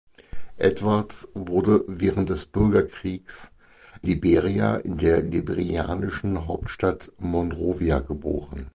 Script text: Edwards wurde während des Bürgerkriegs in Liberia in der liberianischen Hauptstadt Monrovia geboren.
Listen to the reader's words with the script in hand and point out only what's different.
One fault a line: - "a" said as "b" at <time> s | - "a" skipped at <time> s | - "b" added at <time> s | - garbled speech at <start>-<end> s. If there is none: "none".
- "in" skipped at 3.5 s